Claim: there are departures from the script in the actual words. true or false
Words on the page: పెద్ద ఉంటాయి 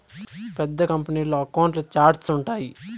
true